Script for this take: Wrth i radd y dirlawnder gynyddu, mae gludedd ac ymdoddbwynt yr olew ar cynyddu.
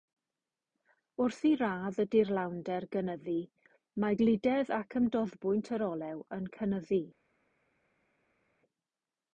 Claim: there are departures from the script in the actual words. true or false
true